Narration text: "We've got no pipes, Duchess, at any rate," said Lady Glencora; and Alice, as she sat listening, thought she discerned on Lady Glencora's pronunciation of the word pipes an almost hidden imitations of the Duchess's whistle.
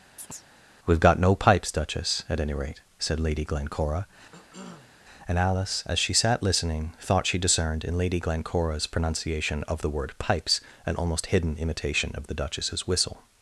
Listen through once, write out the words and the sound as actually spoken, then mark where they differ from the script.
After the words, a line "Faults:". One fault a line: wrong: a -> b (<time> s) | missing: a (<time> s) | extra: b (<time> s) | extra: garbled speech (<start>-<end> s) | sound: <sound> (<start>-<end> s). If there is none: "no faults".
"We've got no pipes, Duchess, at any rate," said Lady Glencora; and Alice, as she sat listening, thought she discerned in Lady Glencora's pronunciation of the word pipes an almost hidden imitation of the Duchess's whistle.
Faults:
sound: chirp (0.2-0.4 s)
sound: cough (4.3-5.0 s)
wrong: on -> in (7.8 s)
wrong: imitations -> imitation (11.6 s)